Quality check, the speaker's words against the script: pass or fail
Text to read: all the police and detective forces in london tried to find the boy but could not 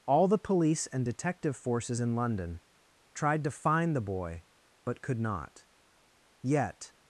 fail